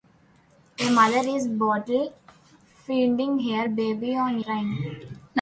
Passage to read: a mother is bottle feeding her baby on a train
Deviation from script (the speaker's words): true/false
true